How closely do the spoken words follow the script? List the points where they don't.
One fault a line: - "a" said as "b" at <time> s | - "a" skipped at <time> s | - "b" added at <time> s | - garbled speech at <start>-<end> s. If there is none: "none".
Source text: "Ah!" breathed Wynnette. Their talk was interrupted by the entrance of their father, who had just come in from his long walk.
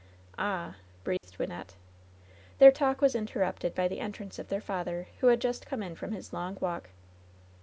none